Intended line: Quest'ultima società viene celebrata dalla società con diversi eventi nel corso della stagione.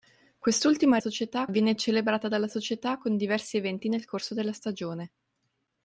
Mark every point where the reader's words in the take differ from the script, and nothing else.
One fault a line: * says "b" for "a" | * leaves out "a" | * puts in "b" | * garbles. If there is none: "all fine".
all fine